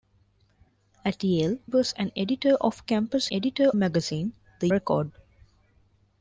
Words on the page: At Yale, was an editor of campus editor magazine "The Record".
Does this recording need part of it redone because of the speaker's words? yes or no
no